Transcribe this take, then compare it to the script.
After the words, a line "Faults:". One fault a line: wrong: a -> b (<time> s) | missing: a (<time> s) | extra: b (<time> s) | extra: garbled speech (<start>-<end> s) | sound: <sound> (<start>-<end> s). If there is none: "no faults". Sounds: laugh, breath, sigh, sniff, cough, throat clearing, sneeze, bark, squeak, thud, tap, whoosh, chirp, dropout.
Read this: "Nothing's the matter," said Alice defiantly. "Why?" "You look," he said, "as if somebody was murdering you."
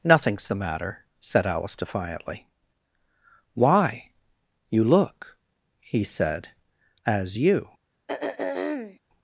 "Nothing's the matter," said Alice defiantly. "Why?" "You look," he said, "as you."
Faults:
missing: if somebody was murdering (7.4 s)
sound: throat clearing (8.1-9.0 s)